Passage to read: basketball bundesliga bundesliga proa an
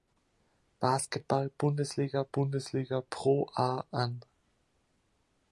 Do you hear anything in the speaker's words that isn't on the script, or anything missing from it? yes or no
no